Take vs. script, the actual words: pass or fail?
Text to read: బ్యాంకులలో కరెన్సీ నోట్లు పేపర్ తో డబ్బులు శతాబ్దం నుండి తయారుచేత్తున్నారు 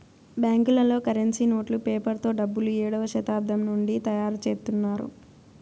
fail